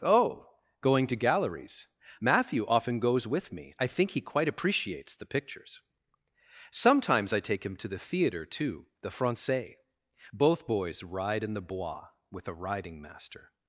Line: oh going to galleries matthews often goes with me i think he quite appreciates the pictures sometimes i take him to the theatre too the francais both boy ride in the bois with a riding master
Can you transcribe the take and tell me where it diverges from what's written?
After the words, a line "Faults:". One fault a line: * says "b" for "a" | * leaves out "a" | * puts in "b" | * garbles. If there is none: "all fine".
oh going to galleries matthew often goes with me i think he quite appreciates the pictures sometimes i take him to the theatre too the francais both boys ride in the bois with a riding master
Faults:
* says "matthew" for "matthews"
* says "boys" for "boy"